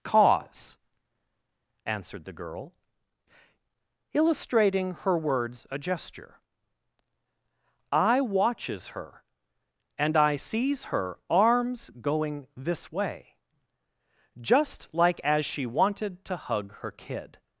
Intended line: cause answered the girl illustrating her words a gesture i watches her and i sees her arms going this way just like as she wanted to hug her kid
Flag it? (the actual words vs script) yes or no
no